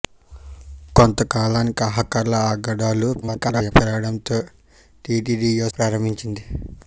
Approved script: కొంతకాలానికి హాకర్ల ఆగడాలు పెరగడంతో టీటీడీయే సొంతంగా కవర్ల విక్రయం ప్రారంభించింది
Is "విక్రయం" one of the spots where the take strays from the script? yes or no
yes